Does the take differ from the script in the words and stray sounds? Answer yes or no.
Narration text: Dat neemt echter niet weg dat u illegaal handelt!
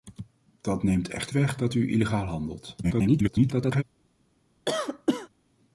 yes